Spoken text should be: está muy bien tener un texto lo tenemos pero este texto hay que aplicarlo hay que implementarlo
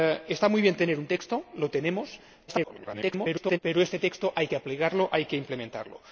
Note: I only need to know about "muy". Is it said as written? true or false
true